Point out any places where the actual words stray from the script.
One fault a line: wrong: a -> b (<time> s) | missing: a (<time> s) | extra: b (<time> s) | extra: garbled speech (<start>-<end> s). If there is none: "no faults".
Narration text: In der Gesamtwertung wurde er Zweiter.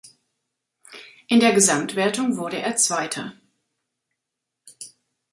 no faults